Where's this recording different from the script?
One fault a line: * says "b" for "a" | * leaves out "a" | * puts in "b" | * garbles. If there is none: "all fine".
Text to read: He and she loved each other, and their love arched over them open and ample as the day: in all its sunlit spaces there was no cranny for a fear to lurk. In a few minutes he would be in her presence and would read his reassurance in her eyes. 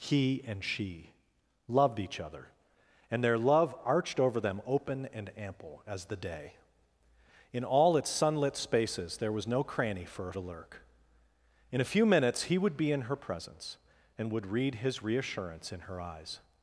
* leaves out "fear"